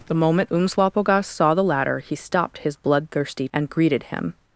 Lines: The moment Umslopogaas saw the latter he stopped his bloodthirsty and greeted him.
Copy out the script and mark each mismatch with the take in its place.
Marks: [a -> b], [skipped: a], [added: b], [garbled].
The moment Umslopogaas saw the latter he stopped his bloodthirsty and greeted him.